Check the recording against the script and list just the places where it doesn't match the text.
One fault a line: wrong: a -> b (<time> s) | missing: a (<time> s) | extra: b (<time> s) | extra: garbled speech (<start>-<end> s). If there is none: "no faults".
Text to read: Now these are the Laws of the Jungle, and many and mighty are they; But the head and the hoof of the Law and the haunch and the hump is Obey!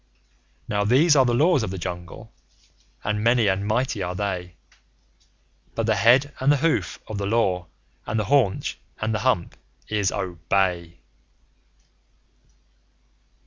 no faults